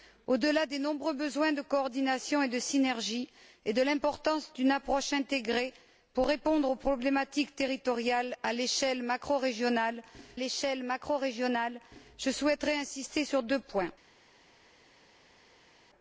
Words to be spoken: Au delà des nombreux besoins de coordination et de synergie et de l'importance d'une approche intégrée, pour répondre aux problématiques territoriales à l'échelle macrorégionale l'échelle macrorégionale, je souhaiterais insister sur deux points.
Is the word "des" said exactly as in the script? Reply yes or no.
yes